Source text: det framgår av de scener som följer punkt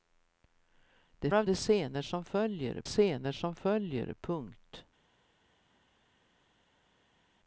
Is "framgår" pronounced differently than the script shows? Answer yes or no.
yes